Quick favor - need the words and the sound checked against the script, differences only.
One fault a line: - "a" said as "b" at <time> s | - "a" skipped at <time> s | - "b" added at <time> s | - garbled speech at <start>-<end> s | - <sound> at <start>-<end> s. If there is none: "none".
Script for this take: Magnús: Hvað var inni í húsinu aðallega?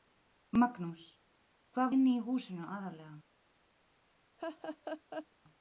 - "var" skipped at 1.9 s
- laugh at 4.4-5.3 s